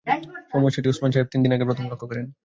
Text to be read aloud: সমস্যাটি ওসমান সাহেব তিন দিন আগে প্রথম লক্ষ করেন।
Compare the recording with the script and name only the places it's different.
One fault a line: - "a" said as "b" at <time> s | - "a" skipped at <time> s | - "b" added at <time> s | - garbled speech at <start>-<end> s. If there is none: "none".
none